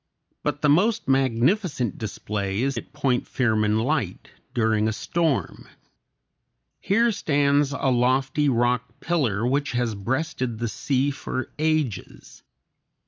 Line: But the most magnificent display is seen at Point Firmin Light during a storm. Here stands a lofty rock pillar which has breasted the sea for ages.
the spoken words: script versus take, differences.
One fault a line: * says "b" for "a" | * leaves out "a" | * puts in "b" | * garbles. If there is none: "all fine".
* leaves out "seen"